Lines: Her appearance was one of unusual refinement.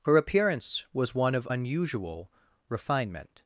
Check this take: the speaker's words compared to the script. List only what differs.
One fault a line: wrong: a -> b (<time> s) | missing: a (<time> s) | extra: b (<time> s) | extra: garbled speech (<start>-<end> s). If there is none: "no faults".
no faults